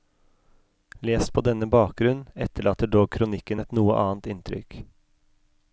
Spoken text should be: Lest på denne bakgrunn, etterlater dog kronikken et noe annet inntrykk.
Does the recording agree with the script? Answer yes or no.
yes